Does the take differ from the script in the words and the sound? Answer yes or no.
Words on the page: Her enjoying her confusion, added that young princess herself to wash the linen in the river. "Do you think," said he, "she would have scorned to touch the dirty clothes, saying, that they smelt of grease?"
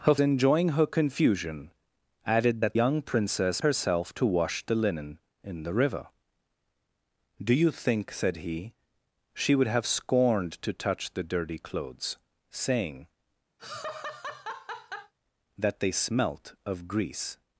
yes